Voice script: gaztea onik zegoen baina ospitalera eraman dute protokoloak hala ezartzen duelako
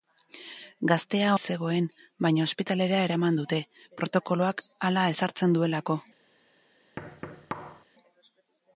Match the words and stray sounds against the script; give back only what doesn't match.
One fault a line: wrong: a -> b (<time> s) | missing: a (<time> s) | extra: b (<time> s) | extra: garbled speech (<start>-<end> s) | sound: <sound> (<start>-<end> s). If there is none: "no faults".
missing: onik (1.4 s)
sound: thud (7.0-7.8 s)